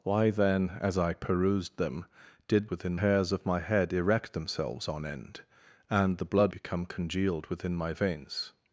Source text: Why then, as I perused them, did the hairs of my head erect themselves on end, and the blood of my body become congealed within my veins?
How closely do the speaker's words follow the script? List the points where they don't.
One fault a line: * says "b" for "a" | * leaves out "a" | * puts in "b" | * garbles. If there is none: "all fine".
* says "within" for "the"
* leaves out "of my body"